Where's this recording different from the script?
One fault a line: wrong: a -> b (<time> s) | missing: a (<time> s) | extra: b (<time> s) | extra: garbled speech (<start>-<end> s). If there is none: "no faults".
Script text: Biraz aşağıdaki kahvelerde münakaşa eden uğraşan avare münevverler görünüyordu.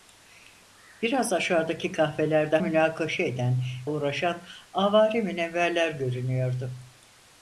no faults